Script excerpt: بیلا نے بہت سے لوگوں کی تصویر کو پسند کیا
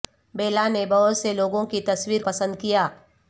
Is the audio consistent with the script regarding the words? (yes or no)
no